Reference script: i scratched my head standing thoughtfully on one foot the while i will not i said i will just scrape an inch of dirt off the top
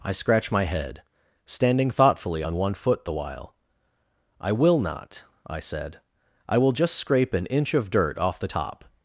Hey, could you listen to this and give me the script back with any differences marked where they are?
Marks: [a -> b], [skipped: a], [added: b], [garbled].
i [scratched -> scratch] my head standing thoughtfully on one foot the while i will not i said i will just scrape an inch of dirt off the top